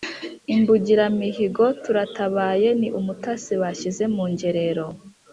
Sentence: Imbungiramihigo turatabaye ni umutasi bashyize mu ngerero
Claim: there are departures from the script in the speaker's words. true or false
false